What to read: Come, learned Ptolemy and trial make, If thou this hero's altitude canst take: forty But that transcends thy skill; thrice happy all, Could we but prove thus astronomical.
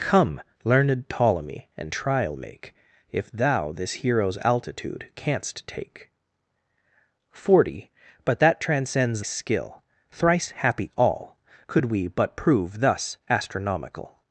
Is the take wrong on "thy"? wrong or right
wrong